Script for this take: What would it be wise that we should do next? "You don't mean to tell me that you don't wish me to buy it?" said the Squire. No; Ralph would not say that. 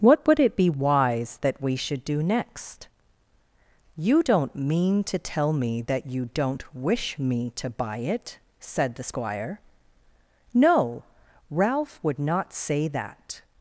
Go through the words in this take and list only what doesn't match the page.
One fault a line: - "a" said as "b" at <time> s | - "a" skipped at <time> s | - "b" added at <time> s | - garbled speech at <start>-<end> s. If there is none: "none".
none